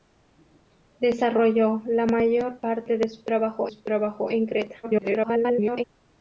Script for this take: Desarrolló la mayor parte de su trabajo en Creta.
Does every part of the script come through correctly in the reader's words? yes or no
no